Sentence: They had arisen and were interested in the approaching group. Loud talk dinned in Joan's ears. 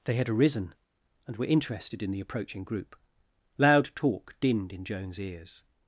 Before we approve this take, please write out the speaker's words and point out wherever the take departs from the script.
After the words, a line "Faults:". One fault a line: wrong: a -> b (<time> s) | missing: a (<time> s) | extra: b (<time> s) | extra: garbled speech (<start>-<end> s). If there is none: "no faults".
They had arisen and were interested in the approaching group. Loud talk dinned in Joan's ears.
Faults:
no faults